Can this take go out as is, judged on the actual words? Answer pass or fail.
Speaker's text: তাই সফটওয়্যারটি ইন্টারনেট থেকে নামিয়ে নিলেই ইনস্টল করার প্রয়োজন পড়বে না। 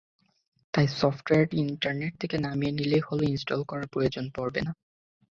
fail